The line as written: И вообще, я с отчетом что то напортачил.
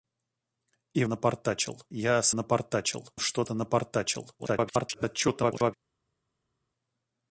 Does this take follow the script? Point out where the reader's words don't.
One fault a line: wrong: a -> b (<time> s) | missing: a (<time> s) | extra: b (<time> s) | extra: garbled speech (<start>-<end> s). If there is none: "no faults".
wrong: вообще -> напортачил (1.1 s)
wrong: отчетом -> напортачил (2.3 s)
extra: garbled speech (4.4-5.7 s)